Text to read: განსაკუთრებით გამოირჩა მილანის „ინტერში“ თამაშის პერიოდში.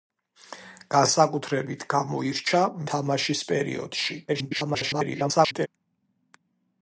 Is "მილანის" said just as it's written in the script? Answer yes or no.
no